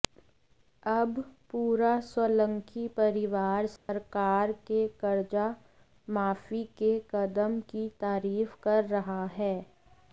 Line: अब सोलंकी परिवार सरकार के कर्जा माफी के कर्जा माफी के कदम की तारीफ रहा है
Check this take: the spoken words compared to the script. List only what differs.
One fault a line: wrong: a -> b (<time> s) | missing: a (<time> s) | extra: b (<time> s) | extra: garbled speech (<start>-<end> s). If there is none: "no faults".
extra: पूरा (1.5 s)
missing: कर्जा माफी के (7.0 s)
extra: कर (8.6 s)